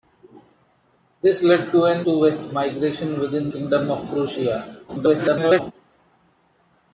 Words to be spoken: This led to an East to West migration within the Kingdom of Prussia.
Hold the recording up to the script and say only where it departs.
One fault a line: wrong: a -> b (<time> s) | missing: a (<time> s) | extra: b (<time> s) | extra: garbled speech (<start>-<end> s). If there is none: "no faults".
missing: East (2.1 s)
missing: the (3.5 s)
extra: garbled speech (4.9-5.7 s)